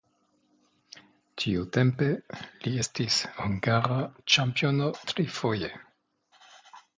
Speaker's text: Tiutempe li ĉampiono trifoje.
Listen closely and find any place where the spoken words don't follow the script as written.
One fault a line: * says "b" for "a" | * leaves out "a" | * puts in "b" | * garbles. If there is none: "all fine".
* puts in "estis hungara"